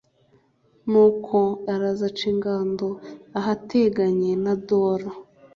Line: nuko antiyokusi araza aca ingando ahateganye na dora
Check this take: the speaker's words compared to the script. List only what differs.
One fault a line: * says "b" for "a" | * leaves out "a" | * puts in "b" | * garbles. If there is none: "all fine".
* leaves out "antiyokusi"